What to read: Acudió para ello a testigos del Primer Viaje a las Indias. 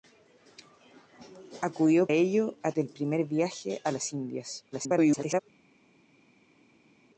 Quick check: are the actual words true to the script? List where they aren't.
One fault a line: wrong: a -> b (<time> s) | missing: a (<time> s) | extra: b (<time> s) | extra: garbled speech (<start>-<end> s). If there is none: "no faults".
missing: para (2.1 s)
missing: testigos (2.7 s)
extra: garbled speech (4.7-5.4 s)